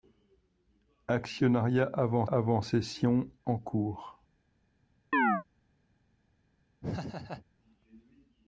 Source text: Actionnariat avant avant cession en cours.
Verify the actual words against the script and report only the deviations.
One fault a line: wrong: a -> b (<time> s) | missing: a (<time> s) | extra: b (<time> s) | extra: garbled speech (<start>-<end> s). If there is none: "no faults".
no faults